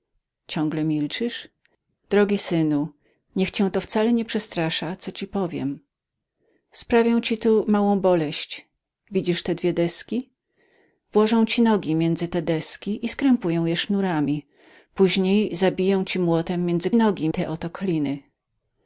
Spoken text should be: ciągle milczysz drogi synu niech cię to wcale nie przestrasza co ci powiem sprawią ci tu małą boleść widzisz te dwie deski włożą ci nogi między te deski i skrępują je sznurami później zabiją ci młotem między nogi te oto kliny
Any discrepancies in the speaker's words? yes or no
no